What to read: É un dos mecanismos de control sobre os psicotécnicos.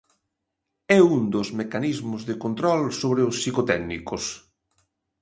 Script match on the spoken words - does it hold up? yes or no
yes